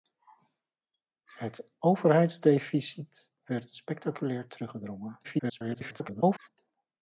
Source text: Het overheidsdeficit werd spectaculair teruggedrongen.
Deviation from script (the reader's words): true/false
true